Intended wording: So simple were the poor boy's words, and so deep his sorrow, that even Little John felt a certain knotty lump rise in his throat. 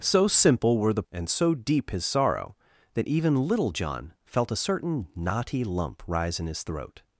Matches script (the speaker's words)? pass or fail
fail